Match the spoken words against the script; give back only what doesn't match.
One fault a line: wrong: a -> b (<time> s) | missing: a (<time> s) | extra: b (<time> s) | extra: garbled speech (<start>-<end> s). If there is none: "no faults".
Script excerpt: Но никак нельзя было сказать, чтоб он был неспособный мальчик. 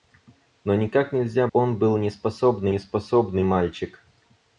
missing: было сказать чтоб (1.5 s)
extra: неспособный (2.7 s)